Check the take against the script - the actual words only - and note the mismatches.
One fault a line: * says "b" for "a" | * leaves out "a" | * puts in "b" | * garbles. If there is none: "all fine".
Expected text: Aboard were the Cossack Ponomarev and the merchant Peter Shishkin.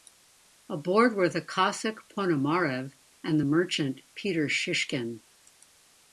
all fine